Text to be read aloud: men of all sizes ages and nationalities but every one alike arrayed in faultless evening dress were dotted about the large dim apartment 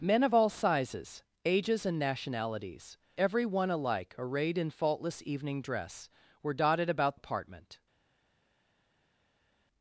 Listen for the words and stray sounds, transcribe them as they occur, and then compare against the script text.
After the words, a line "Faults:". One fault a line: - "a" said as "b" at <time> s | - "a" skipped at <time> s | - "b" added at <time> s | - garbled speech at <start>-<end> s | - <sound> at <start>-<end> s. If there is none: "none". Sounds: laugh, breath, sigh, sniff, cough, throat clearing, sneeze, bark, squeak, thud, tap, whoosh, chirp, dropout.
men of all sizes ages and nationalities every one alike arrayed in faultless evening dress were dotted about apartment
Faults:
- "but" skipped at 3.0 s
- "the large dim" skipped at 7.2 s